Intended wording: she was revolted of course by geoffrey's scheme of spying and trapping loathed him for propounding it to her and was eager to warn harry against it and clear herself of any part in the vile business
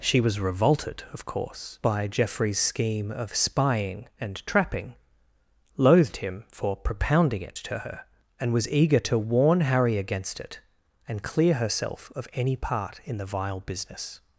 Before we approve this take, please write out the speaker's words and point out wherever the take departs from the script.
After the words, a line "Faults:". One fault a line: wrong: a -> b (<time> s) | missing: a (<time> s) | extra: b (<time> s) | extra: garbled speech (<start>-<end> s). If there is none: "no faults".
she was revolted of course by geoffrey's scheme of spying and trapping loathed him for propounding it to her and was eager to warn harry against it and clear herself of any part in the vile business
Faults:
no faults